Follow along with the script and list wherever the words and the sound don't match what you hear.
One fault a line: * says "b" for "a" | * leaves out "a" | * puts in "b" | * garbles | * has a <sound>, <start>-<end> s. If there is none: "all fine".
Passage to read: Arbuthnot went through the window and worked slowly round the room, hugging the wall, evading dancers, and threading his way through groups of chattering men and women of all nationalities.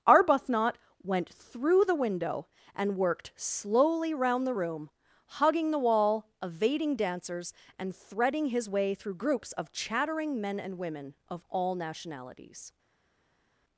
all fine